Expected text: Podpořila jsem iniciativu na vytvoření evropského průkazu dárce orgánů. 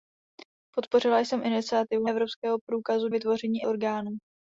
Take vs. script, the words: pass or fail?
fail